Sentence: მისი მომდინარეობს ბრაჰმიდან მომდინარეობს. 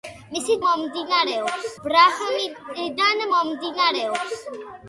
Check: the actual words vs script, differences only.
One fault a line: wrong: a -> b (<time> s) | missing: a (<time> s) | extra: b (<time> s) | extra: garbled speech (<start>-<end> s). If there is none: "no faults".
no faults